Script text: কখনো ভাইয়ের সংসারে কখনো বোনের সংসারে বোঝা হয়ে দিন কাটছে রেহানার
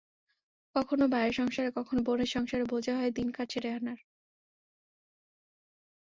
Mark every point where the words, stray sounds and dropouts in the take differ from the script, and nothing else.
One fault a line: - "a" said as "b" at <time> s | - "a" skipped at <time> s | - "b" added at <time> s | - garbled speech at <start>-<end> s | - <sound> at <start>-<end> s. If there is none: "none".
none